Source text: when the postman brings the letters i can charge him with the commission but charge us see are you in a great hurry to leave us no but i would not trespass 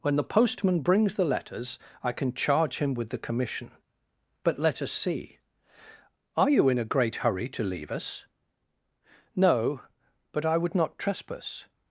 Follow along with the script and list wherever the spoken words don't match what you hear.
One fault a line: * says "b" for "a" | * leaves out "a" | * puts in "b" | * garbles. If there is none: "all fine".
* says "let" for "charge"